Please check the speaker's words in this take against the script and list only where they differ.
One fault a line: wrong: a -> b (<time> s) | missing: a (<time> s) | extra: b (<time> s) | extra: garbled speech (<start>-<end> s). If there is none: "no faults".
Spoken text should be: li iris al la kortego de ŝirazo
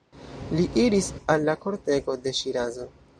no faults